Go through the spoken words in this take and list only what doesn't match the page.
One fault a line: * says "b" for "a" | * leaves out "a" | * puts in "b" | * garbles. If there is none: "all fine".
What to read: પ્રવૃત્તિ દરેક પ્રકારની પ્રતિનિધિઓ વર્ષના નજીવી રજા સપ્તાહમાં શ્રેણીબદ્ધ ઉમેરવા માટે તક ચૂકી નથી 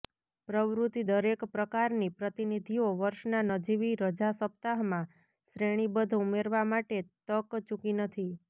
all fine